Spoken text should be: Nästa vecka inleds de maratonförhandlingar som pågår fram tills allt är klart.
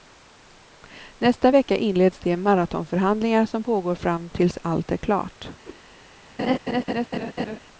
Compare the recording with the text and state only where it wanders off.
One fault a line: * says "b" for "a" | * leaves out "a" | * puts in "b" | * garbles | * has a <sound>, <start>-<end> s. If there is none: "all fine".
* has a whoosh, 5.6-5.8 s
* has a laugh, 6.4-7.6 s